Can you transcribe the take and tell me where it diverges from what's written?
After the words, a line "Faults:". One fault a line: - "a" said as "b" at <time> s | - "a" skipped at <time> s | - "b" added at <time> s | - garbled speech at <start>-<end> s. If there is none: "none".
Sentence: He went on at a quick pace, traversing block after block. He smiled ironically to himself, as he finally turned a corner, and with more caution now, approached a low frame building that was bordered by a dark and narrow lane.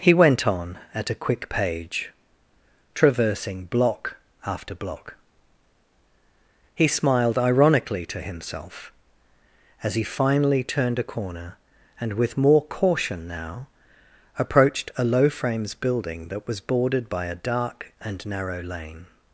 He went on at a quick page, traversing block after block. He smiled ironically to himself, as he finally turned a corner, and with more caution now, approached a low frames building that was bordered by a dark and narrow lane.
Faults:
- "pace" said as "page" at 1.5 s
- "frame" said as "frames" at 15.3 s